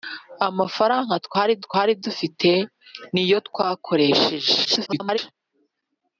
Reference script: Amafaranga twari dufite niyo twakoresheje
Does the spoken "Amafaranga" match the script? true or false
true